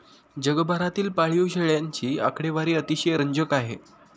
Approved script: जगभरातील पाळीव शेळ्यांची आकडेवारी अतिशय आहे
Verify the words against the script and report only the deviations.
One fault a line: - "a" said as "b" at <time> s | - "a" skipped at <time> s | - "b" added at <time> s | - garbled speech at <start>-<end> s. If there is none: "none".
- "रंजक" added at 3.1 s